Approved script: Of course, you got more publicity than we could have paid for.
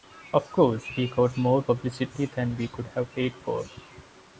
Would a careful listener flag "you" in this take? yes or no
yes